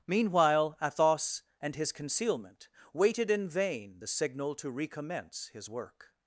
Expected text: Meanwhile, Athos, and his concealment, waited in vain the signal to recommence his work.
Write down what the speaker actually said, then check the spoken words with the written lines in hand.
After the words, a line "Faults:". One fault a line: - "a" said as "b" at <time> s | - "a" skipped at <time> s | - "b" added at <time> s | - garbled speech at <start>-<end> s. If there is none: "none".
Meanwhile, Athos, and his concealment, waited in vain the signal to recommence his work.
Faults:
none